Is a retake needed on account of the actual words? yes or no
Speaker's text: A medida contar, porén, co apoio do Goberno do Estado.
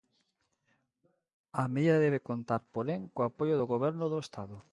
yes